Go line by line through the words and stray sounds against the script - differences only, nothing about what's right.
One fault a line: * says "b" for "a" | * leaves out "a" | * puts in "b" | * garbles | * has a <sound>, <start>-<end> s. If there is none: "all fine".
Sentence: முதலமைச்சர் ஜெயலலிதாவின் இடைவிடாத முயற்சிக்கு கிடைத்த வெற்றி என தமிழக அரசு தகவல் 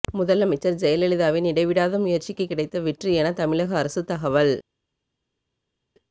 all fine